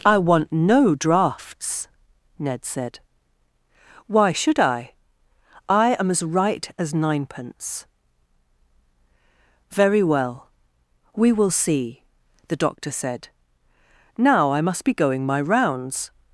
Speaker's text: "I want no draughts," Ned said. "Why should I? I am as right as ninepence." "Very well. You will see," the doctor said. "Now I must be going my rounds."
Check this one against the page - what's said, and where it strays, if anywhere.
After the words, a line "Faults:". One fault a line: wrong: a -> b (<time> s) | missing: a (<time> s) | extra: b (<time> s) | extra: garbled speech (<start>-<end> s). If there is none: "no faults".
"I want no draughts," Ned said. "Why should I? I am as right as ninepence." "Very well. We will see," the doctor said. "Now I must be going my rounds."
Faults:
wrong: You -> We (11.2 s)